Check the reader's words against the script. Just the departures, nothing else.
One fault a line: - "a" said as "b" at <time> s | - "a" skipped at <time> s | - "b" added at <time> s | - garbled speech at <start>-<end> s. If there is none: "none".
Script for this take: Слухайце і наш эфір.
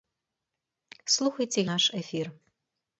none